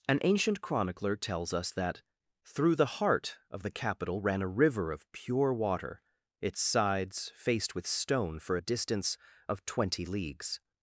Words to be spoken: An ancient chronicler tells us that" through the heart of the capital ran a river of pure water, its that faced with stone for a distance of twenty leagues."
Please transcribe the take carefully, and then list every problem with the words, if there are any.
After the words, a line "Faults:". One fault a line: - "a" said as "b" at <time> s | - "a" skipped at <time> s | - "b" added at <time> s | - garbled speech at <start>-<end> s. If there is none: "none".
An ancient chronicler tells us that" through the heart of the capital ran a river of pure water, its sides faced with stone for a distance of twenty leagues."
Faults:
- "that" said as "sides" at 6.6 s